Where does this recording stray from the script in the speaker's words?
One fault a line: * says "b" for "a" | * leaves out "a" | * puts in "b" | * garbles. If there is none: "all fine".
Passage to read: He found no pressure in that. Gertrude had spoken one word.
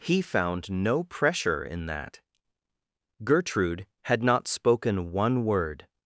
* puts in "not"